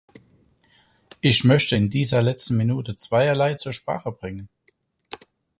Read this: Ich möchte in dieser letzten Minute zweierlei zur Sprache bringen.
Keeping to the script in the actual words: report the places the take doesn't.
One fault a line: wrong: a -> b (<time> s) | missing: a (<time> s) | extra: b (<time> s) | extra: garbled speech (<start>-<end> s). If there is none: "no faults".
no faults